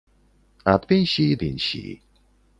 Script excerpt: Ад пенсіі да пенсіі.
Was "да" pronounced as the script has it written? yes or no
no